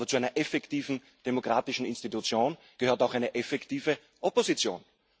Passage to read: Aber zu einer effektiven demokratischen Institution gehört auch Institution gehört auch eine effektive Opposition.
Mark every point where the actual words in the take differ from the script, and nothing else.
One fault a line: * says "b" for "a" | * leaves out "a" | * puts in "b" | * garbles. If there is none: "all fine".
* leaves out "Institution gehört auch"